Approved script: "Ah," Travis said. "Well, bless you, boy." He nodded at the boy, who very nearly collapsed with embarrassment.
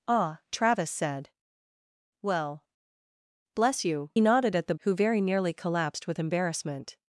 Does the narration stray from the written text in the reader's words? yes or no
yes